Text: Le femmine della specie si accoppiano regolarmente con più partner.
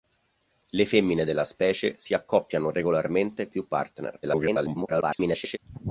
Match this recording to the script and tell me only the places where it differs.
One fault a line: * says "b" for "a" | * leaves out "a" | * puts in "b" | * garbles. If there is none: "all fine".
* leaves out "con"
* garbles